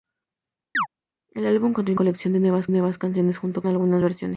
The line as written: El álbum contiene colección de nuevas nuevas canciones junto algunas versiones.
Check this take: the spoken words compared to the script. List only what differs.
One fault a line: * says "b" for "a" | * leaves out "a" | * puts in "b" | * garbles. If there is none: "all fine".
all fine